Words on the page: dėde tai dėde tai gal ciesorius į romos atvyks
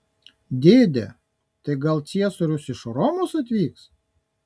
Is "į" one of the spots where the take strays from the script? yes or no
yes